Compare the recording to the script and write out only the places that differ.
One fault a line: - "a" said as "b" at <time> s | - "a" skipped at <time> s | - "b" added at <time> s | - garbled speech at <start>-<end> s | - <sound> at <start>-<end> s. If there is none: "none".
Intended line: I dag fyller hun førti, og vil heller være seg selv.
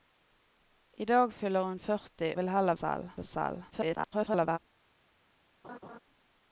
- "og" skipped at 2.3 s
- "være" said as "selv" at 2.8 s
- garbled speech at 3.7-4.6 s
- laugh at 5.6-6.0 s